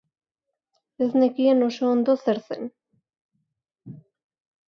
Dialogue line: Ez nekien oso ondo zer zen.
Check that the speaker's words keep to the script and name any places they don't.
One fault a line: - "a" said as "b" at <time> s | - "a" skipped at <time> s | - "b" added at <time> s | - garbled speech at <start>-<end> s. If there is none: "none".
none